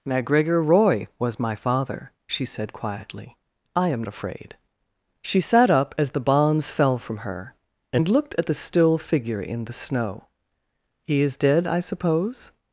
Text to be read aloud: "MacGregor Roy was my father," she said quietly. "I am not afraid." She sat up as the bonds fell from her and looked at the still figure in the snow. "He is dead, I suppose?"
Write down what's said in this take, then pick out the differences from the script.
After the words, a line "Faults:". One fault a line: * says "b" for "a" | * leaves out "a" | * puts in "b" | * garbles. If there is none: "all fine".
"MacGregor Roy was my father," she said quietly. "I am afraid." She sat up as the bonds fell from her and looked at the still figure in the snow. "He is dead, I suppose?"
Faults:
* leaves out "not"